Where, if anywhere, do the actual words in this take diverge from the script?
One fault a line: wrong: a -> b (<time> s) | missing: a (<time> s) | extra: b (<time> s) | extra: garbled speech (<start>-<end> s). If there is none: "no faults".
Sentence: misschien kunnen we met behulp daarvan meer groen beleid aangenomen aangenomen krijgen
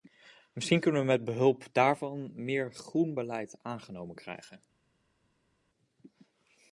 missing: aangenomen (4.2 s)